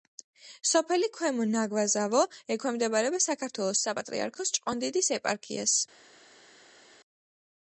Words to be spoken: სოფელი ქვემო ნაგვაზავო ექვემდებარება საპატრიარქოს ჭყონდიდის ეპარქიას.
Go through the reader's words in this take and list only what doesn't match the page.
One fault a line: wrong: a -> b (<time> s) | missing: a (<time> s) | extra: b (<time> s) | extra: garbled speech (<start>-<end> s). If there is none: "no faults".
extra: საქართველოს (3.3 s)